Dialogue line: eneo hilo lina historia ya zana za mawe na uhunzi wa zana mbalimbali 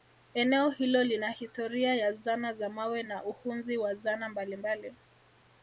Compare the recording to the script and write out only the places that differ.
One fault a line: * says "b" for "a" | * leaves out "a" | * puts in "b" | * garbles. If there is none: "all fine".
all fine